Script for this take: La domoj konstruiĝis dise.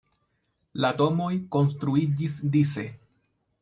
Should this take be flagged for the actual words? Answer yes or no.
no